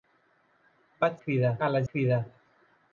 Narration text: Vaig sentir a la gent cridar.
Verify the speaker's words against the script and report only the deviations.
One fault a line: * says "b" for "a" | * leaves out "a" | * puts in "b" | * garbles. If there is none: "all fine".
* says "cridar" for "sentir"
* leaves out "gent"